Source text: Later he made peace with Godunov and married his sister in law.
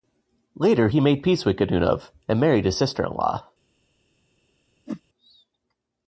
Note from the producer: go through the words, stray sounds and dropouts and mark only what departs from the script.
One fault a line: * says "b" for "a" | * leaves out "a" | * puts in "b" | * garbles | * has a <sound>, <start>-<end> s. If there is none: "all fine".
* has a whoosh, 4.9-5.0 s